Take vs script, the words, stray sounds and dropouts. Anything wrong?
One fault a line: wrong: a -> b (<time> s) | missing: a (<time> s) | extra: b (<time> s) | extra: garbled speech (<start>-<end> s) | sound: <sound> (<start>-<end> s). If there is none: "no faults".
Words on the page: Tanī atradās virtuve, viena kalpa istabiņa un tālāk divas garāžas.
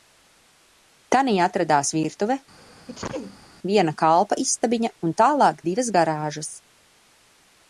sound: sneeze (2.6-3.5 s)